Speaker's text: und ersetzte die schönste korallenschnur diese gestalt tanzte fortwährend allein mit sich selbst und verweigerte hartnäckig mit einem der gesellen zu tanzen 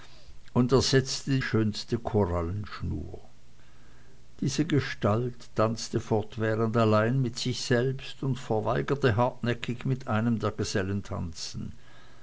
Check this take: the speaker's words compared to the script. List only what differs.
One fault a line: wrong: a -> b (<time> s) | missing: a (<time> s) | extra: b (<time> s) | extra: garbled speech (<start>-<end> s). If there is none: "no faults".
missing: die (1.4 s)
missing: zu (11.0 s)